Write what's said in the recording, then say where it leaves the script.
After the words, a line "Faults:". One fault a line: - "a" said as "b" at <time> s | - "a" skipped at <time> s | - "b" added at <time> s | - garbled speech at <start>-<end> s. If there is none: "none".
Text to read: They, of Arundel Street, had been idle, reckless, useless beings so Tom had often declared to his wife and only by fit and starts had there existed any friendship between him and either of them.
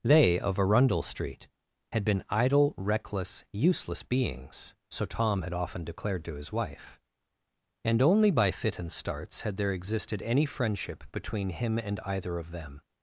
They, of Arundel Street, had been idle, reckless, useless beings so Tom had often declared to his wife and only by fit and starts had there existed any friendship between him and either of them.
Faults:
none